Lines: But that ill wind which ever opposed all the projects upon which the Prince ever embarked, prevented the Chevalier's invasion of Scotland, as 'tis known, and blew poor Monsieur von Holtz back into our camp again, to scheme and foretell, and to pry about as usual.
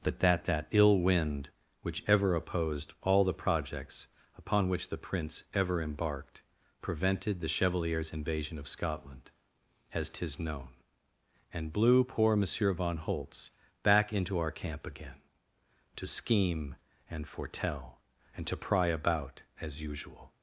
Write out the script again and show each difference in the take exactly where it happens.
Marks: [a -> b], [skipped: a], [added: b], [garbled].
But that [added: that] ill wind which ever opposed all the projects upon which the Prince ever embarked, prevented the Chevalier's invasion of Scotland, as 'tis known, and blew poor Monsieur von Holtz back into our camp again, to scheme and foretell, and to pry about as usual.